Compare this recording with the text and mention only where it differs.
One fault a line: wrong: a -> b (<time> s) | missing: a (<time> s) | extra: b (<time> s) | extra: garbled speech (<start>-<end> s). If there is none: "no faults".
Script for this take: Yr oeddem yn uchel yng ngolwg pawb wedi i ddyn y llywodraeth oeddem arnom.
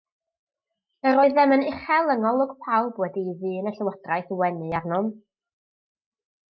wrong: oeddem -> wenu (4.5 s)